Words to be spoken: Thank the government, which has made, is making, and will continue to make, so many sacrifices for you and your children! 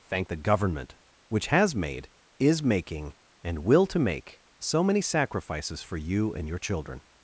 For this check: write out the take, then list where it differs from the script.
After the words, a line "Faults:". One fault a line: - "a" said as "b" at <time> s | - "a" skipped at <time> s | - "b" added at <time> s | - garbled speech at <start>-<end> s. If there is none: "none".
Thank the government, which has made, is making, and will to make, so many sacrifices for you and your children!
Faults:
- "continue" skipped at 3.9 s